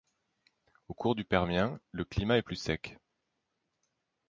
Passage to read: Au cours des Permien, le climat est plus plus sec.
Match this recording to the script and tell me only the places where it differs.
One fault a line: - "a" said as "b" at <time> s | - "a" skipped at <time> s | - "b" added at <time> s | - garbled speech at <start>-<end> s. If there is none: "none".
- "des" said as "du" at 1.1 s
- "plus" skipped at 2.5 s